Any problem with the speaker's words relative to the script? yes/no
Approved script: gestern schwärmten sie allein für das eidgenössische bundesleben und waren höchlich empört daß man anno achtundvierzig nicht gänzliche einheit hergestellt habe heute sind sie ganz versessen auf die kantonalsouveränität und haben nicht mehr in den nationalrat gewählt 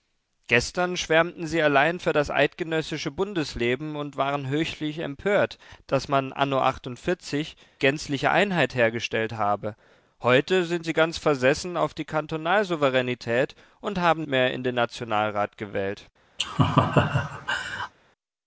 yes